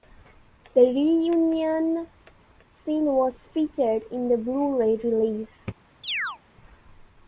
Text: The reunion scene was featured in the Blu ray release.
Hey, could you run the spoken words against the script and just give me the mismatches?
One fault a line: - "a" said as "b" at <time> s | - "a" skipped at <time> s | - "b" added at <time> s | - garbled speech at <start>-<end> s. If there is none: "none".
none